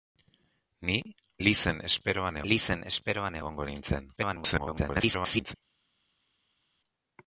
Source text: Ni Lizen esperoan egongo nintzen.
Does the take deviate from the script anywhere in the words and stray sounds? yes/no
yes